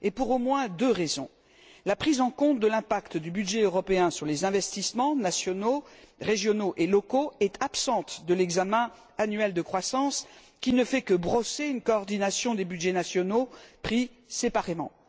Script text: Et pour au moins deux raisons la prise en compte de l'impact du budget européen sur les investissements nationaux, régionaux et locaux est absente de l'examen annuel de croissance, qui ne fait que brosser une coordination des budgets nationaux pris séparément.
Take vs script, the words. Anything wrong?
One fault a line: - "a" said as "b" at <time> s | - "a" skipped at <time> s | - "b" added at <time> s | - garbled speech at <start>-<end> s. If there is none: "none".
none